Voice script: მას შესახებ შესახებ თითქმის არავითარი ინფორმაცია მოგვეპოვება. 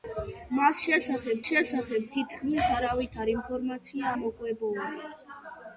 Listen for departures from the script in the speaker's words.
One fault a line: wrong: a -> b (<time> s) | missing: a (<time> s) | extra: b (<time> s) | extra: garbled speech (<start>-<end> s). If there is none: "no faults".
no faults